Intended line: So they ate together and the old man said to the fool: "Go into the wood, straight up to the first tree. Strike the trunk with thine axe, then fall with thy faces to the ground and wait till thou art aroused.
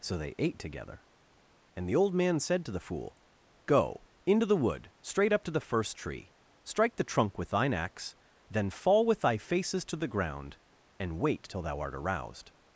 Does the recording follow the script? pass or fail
pass